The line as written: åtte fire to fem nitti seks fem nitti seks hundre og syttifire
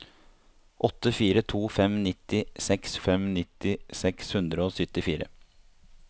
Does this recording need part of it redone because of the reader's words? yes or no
no